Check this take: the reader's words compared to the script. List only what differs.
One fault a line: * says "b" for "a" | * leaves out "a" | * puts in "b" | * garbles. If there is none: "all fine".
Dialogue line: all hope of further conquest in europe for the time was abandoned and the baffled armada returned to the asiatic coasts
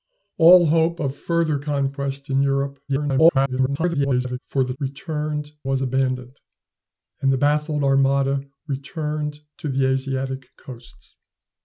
* garbles
* says "returned" for "time"